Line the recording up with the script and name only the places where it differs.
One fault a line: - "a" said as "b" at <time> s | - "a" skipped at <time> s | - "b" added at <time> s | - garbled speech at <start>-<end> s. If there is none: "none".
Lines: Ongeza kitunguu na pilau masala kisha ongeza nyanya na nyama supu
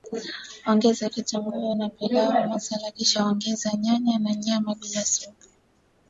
- "bila" added at 4.7 s